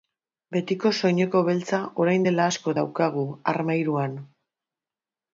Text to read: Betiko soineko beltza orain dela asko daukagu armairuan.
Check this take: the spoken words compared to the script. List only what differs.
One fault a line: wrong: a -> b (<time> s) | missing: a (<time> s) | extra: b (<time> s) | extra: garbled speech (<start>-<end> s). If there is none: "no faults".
no faults